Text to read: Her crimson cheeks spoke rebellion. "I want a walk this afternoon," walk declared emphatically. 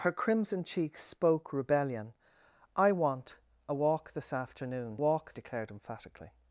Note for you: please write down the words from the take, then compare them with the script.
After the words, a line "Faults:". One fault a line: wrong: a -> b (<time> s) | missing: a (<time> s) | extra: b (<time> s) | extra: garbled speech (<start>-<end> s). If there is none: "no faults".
Her crimson cheeks spoke rebellion. "I want a walk this afternoon," walk declared emphatically.
Faults:
no faults